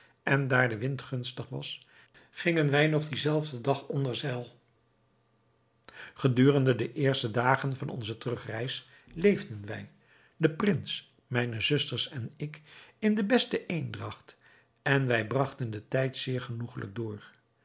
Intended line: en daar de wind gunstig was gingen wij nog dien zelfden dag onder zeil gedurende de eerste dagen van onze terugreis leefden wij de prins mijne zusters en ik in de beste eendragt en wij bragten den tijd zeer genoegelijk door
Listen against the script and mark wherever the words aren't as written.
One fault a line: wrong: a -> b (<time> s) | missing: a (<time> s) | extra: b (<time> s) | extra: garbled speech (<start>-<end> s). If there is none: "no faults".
no faults